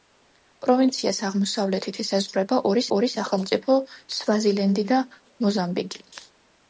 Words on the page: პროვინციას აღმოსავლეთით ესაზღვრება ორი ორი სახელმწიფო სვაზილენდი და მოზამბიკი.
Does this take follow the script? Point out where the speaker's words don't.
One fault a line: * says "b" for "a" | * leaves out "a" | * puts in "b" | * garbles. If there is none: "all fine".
all fine